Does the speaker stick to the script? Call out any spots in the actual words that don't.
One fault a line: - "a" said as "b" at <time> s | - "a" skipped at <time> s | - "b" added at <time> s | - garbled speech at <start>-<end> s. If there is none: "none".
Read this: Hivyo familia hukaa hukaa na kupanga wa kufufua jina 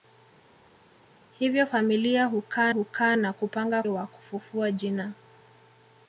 none